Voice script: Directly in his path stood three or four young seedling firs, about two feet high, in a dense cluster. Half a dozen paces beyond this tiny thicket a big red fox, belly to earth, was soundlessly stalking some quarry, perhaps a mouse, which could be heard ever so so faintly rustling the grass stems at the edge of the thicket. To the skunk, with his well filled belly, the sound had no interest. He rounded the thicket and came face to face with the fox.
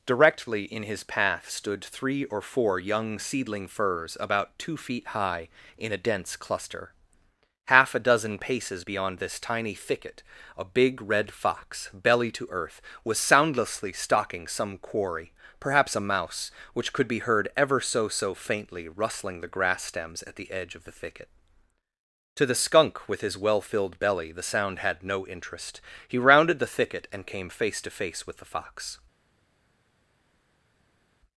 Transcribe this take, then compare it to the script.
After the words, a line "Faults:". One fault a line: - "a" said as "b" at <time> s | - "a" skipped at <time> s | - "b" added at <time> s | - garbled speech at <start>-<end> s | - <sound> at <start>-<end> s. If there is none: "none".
Directly in his path stood three or four young seedling firs, about two feet high, in a dense cluster. Half a dozen paces beyond this tiny thicket a big red fox, belly to earth, was soundlessly stalking some quarry, perhaps a mouse, which could be heard ever so so faintly rustling the grass stems at the edge of the thicket. To the skunk, with his well filled belly, the sound had no interest. He rounded the thicket and came face to face with the fox.
Faults:
none